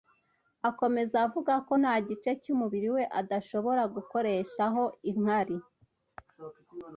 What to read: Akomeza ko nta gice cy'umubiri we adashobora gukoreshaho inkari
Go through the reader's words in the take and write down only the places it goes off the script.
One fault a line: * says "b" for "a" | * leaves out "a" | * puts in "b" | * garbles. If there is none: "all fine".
* puts in "avuga"